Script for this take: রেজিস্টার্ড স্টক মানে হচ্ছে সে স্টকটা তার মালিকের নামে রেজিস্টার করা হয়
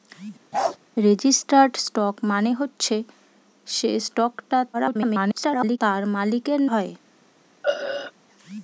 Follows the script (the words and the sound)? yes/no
no